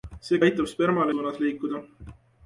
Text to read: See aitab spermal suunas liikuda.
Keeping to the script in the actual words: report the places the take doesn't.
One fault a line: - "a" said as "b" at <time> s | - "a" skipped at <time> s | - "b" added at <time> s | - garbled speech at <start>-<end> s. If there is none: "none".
none